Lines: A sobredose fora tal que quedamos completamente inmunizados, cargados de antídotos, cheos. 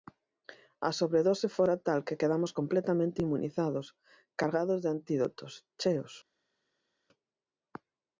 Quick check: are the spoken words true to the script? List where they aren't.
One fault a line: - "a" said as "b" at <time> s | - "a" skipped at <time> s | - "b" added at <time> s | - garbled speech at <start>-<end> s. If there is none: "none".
none